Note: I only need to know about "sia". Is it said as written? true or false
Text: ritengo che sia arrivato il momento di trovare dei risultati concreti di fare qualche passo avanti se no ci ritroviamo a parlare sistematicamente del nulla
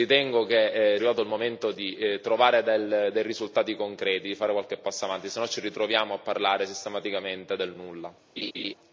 false